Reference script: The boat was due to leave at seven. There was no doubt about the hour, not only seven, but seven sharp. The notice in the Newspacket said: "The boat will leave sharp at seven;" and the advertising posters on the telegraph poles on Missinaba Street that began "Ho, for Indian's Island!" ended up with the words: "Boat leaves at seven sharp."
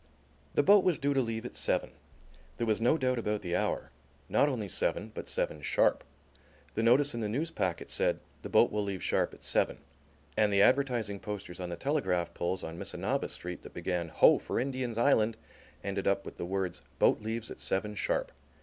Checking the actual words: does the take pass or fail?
pass